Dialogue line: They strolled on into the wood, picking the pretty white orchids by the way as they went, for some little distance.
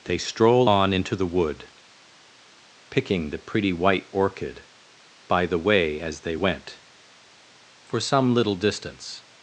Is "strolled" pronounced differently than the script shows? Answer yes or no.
yes